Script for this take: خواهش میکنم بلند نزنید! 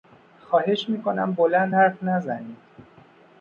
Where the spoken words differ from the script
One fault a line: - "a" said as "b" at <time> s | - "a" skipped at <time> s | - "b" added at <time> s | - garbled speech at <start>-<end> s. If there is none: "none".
- "حرف" added at 1.7 s